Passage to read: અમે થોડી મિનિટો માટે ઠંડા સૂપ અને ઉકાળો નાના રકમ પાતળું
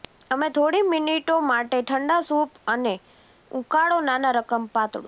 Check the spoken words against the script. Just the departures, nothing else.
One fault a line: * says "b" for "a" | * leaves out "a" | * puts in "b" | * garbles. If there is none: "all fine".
all fine